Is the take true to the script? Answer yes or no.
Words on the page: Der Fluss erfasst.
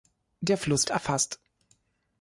yes